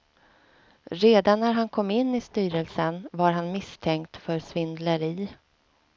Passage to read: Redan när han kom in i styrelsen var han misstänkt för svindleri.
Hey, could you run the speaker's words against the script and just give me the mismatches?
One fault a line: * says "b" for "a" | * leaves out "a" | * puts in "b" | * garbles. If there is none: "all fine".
all fine